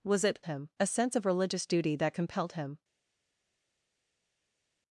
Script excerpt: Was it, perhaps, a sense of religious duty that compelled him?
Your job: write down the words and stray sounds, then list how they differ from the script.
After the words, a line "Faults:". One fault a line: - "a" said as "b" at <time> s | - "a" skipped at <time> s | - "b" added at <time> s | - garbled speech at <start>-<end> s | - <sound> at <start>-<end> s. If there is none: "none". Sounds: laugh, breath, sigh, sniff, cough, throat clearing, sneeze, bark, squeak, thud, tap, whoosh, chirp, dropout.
Was it, him, a sense of religious duty that compelled him?
Faults:
- "perhaps" said as "him" at 0.4 s